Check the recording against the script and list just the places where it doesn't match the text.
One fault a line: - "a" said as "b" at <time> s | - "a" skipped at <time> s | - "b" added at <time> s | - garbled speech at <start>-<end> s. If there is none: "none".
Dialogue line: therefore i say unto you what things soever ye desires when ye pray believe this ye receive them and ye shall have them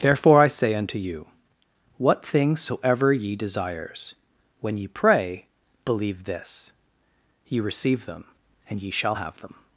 none